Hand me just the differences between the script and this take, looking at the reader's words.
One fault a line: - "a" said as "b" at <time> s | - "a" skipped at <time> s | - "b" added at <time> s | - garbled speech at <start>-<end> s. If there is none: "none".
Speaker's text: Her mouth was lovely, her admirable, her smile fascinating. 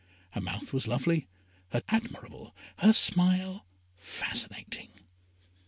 none